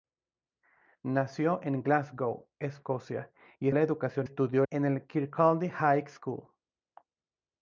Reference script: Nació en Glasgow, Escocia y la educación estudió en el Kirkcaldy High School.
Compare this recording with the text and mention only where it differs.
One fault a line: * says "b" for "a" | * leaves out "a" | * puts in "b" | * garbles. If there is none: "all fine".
all fine